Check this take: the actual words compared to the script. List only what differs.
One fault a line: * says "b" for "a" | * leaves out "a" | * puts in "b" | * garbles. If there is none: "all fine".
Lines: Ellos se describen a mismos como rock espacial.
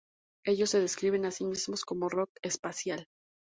* puts in "sí"